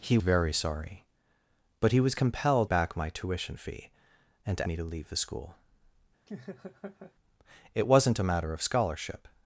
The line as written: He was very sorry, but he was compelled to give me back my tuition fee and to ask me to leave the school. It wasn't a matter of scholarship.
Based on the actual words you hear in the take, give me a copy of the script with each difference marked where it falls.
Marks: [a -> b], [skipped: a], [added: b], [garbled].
He [skipped: was] very sorry, but he was compelled [skipped: to give me] back my tuition fee and to [skipped: ask] me to leave the school. It wasn't a matter of scholarship.